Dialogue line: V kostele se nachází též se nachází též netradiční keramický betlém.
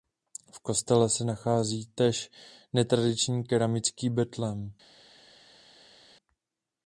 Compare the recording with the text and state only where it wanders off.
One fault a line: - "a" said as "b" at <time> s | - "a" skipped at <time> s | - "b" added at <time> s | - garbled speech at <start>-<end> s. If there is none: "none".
- "se nachází též" skipped at 2.3 s